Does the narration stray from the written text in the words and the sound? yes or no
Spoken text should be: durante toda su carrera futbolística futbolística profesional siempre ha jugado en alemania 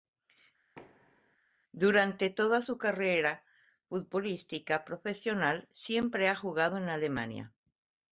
yes